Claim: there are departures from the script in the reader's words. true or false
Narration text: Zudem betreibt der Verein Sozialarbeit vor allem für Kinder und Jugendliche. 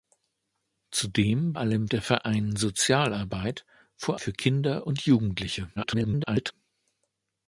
true